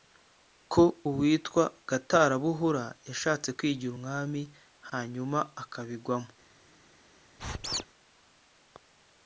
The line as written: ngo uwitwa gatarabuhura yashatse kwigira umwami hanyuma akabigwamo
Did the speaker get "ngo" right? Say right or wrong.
wrong